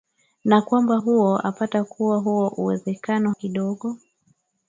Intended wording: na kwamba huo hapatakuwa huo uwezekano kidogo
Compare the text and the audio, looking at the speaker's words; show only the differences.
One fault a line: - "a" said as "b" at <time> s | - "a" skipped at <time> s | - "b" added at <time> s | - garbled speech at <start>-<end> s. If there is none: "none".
none